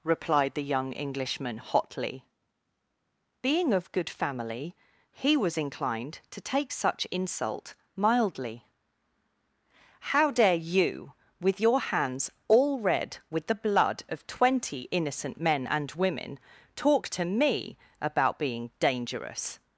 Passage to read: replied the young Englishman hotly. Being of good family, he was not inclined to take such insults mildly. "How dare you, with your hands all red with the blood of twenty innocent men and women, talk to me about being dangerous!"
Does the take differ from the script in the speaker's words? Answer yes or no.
yes